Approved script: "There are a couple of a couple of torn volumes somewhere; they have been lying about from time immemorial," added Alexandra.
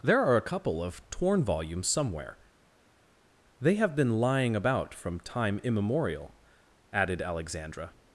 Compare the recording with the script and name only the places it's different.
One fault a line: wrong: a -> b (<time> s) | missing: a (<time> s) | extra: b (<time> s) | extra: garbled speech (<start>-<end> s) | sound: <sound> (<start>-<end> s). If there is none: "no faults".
missing: a couple of (1.1 s)